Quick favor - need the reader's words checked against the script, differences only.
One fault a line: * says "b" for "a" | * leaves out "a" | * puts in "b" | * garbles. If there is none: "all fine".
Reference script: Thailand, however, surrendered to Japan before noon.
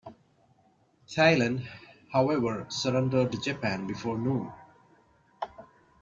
all fine